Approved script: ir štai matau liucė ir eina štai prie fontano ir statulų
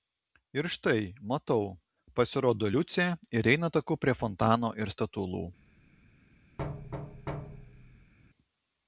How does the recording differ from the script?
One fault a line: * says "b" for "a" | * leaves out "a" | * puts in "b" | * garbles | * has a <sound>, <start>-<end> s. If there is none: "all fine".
* puts in "pasirodo"
* says "taku" for "štai"
* has a thud, 6.6-8.1 s